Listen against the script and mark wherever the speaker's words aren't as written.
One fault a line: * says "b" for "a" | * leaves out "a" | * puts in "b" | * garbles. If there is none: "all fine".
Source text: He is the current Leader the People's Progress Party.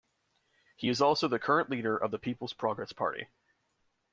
* puts in "also"
* puts in "of"